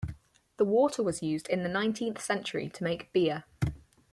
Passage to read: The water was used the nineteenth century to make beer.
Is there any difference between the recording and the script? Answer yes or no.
yes